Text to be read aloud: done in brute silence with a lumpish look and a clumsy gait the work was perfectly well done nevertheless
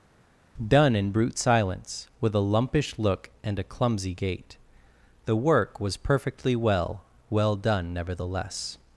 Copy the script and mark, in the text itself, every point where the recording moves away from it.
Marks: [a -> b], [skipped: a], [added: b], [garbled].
done in brute silence with a lumpish look and a clumsy gait the work was perfectly well [added: well] done nevertheless